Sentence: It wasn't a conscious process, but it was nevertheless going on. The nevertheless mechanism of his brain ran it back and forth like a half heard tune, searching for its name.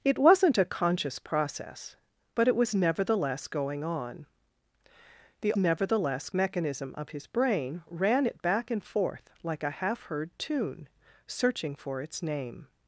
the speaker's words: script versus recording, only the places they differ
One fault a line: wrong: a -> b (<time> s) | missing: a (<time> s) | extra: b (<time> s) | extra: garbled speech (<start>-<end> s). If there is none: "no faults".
no faults